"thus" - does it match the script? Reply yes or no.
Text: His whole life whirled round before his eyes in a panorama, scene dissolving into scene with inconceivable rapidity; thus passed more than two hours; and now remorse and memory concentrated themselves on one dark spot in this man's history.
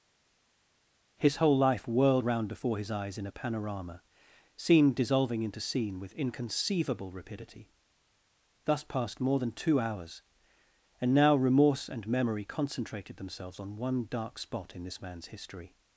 yes